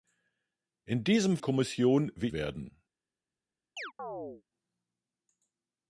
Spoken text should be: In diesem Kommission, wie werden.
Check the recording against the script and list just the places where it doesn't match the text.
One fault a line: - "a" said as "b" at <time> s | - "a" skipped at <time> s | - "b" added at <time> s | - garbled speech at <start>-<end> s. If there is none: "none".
none